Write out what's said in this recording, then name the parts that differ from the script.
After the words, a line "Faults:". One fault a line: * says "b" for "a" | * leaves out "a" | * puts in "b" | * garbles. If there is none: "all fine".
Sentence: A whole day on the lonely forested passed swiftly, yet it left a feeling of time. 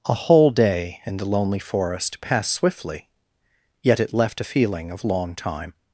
A whole day in the lonely forest passed swiftly, yet it left a feeling of long time.
Faults:
* says "in" for "on"
* says "forest" for "forested"
* puts in "long"